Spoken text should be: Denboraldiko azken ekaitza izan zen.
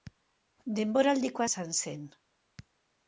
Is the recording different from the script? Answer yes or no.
yes